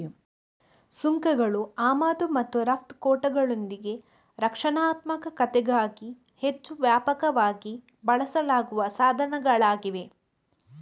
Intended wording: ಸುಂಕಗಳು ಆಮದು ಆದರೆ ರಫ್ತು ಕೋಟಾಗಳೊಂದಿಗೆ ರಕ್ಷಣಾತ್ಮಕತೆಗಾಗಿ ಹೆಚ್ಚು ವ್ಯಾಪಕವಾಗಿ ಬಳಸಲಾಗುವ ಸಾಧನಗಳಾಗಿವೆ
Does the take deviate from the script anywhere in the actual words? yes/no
yes